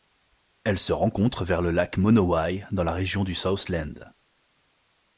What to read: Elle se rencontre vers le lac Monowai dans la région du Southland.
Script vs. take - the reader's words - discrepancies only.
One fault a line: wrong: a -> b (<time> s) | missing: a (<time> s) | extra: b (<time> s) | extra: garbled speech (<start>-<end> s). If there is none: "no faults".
no faults